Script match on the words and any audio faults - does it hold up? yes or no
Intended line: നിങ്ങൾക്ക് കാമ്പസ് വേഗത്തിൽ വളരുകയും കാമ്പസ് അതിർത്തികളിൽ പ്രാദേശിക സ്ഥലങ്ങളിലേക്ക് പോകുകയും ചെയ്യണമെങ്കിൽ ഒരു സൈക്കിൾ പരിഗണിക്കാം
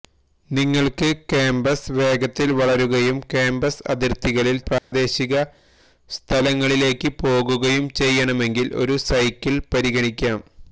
no